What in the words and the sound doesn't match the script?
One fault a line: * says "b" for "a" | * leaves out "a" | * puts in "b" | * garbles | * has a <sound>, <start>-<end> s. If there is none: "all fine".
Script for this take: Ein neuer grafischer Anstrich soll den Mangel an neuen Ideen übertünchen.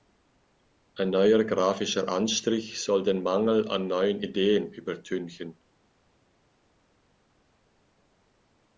all fine